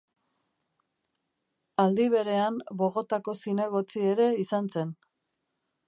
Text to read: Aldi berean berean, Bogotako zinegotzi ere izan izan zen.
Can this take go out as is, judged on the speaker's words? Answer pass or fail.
fail